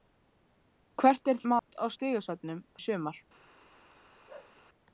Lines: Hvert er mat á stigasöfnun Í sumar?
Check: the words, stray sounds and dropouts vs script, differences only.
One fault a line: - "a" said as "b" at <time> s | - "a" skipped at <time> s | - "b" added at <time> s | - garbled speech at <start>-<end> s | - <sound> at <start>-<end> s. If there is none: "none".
- dropout at 1.6-1.7 s
- bark at 4.3-4.6 s